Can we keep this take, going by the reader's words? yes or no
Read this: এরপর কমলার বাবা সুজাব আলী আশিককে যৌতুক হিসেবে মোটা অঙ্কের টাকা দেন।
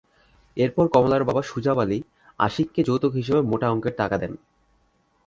yes